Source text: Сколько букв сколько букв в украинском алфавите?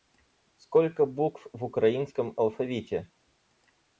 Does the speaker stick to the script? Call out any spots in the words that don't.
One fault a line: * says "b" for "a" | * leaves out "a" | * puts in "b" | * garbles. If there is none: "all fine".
* leaves out "сколько букв"